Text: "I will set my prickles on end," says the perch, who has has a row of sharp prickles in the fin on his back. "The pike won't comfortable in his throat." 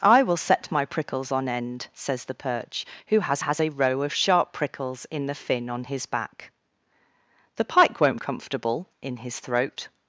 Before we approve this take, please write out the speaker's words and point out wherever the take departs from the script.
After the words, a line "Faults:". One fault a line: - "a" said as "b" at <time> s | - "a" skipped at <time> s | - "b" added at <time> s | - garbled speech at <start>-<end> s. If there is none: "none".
"I will set my prickles on end," says the perch, who has has a row of sharp prickles in the fin on his back. "The pike won't comfortable in his throat."
Faults:
none